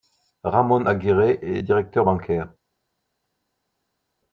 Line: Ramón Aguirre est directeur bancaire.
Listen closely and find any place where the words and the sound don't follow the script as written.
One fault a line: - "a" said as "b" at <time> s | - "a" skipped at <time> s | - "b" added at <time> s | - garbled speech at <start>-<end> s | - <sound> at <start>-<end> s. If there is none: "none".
none